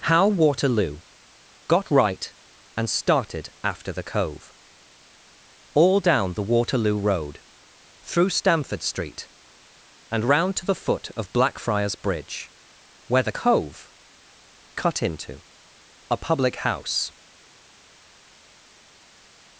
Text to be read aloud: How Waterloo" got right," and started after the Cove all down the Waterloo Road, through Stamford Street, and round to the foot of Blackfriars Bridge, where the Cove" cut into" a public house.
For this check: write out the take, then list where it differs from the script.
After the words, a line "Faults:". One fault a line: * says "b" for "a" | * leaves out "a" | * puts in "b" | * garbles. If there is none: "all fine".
How Waterloo" got right," and started after the Cove all down the Waterloo Road, through Stamford Street, and round to the foot of Blackfriars Bridge, where the Cove" cut into" a public house.
Faults:
all fine